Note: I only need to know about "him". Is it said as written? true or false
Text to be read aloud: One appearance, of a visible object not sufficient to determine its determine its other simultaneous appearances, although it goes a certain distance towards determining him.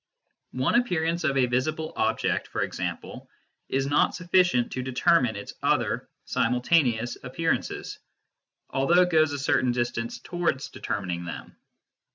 false